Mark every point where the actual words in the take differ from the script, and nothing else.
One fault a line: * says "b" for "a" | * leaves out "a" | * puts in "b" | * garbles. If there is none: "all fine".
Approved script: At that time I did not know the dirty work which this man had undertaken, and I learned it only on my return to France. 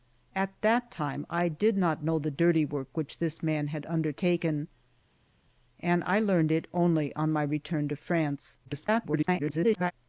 * garbles